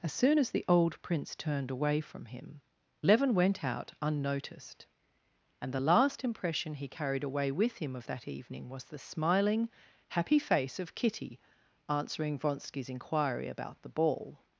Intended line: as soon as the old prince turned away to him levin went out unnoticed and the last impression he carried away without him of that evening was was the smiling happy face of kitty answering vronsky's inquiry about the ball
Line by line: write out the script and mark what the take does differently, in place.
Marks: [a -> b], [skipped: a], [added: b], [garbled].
as soon as the old prince turned away [to -> from] him levin went out unnoticed and the last impression he carried away [without -> with] him of that evening was [skipped: was] the smiling happy face of kitty answering vronsky's inquiry about the ball